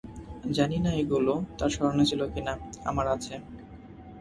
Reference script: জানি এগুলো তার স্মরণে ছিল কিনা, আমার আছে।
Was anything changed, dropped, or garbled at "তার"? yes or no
no